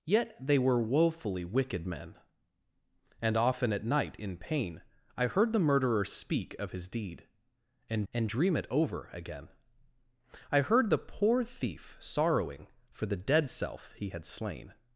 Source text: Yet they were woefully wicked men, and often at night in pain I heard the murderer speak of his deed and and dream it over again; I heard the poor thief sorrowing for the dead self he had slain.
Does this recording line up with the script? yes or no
yes